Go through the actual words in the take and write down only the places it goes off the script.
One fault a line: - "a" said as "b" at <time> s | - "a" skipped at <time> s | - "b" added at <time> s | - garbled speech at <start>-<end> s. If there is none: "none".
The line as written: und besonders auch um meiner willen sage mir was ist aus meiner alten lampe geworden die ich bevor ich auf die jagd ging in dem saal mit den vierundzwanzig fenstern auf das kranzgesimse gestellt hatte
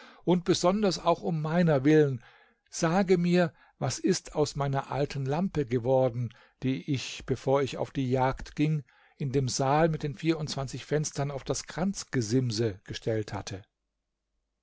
none